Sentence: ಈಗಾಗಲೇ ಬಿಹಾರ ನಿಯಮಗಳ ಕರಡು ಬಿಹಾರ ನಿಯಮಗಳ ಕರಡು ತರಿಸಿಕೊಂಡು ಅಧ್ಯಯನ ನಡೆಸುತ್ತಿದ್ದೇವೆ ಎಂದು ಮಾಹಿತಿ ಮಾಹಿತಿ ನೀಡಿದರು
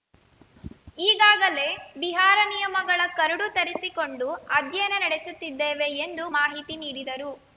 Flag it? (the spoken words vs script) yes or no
yes